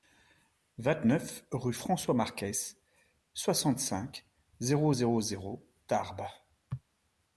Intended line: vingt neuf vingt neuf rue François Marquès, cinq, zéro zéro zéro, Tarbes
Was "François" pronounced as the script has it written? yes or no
yes